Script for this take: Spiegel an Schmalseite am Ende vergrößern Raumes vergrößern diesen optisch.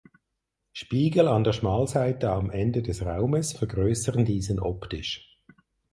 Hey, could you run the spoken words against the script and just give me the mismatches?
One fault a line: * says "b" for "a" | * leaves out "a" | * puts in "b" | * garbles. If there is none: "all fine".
* puts in "der"
* says "des" for "vergrößern"